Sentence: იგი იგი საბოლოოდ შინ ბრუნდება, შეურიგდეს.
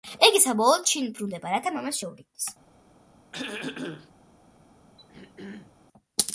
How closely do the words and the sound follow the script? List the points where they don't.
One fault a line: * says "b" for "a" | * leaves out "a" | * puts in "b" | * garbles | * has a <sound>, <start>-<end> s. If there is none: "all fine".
* leaves out "იგი"
* puts in "რათა მამას"
* has a throat clearing, 3.3-4.1 s
* has a throat clearing, 5.0-5.7 s